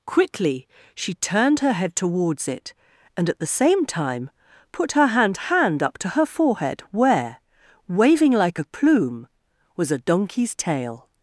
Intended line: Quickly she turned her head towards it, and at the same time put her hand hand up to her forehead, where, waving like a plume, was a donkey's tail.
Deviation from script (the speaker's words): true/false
false